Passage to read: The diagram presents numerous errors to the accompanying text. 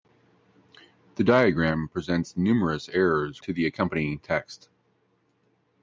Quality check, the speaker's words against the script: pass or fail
pass